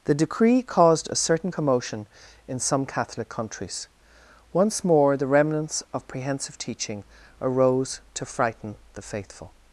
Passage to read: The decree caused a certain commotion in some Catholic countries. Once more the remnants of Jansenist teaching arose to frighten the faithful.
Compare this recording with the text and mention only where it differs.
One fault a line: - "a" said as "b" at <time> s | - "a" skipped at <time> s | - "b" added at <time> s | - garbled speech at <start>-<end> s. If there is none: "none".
- "Jansenist" said as "Prehensive" at 6.1 s